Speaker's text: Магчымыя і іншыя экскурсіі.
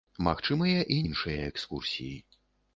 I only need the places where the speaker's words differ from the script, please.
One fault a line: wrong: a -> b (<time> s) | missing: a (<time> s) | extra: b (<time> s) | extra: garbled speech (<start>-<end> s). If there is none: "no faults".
no faults